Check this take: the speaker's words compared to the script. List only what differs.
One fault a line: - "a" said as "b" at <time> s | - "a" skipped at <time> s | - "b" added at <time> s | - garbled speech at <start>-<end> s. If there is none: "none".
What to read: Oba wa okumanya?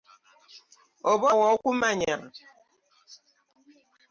none